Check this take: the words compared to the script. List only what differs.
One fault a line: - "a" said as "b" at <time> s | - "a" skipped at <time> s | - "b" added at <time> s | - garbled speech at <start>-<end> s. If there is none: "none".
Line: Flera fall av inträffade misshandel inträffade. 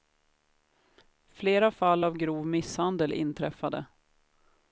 - "inträffade" said as "grov" at 2.2 s